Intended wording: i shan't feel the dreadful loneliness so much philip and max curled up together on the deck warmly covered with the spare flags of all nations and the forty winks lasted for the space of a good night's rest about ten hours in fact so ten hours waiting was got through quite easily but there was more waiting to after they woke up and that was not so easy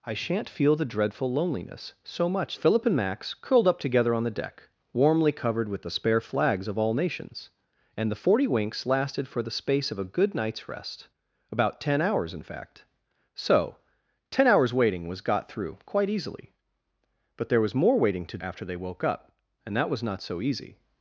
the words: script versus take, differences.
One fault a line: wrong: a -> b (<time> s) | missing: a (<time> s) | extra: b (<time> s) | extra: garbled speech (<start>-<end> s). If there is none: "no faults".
no faults